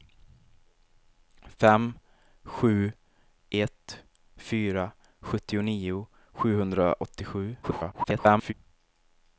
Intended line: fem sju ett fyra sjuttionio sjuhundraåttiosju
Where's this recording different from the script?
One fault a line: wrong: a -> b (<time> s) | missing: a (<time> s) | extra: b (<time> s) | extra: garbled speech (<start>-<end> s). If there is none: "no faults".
extra: garbled speech (7.6-8.5 s)